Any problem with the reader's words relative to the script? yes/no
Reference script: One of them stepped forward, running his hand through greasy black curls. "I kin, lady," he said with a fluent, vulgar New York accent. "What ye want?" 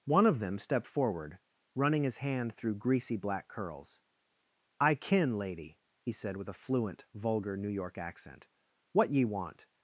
no